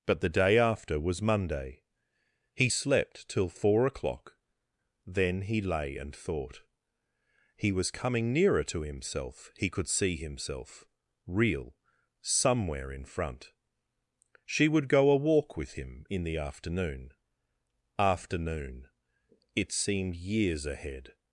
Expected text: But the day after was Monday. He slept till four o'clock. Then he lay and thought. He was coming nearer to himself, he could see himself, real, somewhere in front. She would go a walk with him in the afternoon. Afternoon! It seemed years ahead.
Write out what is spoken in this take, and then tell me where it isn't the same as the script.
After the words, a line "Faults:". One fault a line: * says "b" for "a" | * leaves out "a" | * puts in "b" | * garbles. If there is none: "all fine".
But the day after was Monday. He slept till four o'clock. Then he lay and thought. He was coming nearer to himself, he could see himself, real, somewhere in front. She would go a walk with him in the afternoon. Afternoon! It seemed years ahead.
Faults:
all fine